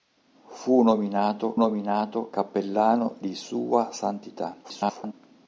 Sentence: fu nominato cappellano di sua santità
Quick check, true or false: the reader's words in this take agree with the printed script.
false